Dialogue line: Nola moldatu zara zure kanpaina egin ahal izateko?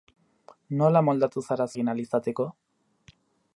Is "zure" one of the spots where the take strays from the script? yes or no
yes